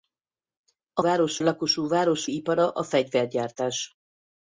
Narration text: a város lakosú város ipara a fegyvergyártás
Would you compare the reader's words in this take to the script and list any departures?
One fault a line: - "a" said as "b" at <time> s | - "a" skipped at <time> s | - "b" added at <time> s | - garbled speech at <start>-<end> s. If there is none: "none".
none